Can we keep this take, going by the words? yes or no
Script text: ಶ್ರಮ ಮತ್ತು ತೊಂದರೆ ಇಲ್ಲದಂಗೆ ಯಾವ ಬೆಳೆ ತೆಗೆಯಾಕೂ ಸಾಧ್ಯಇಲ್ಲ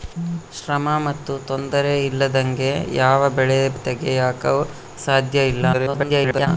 no